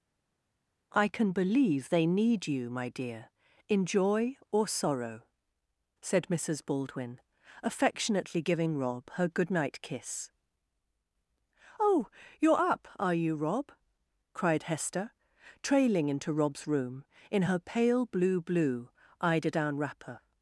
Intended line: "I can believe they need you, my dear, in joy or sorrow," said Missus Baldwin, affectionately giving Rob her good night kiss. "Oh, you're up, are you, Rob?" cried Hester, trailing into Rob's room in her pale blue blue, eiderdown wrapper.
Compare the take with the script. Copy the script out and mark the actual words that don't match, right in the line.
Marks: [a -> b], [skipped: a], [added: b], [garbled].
"I can believe they need you, my dear, in joy or sorrow," said Missus Baldwin, affectionately giving Rob her good night kiss. "Oh, you're up, are you, Rob?" cried Hester, trailing into Rob's room in her pale blue blue, eiderdown wrapper.